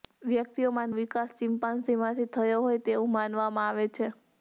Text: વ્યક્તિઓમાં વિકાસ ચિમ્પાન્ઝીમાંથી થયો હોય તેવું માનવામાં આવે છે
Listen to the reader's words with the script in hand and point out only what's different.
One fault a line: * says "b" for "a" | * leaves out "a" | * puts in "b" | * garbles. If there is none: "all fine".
all fine